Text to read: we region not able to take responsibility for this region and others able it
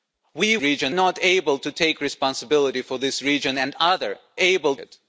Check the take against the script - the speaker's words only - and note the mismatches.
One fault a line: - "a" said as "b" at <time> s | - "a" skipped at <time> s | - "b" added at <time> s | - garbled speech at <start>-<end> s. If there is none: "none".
none